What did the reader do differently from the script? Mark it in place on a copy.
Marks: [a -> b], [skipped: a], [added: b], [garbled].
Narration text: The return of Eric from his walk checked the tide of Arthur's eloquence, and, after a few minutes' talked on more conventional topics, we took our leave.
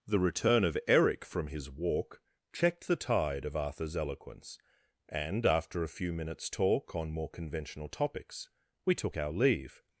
The return of Eric from his walk checked the tide of Arthur's eloquence, and, after a few minutes' [talked -> talk] on more conventional topics, we took our leave.